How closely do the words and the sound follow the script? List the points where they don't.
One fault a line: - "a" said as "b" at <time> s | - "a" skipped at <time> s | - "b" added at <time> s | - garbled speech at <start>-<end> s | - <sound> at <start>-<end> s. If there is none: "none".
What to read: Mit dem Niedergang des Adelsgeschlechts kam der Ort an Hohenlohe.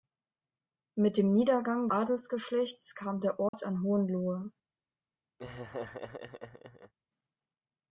- "des" skipped at 1.9 s
- dropout at 3.5-3.5 s
- laugh at 5.4-6.9 s